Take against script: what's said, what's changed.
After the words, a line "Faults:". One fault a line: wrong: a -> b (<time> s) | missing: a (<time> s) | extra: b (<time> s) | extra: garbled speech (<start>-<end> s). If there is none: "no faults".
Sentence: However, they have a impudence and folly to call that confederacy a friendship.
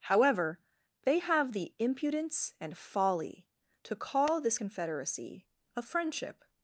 However, they have the impudence and folly to call this confederacy a friendship.
Faults:
wrong: a -> the (1.5 s)
wrong: that -> this (4.4 s)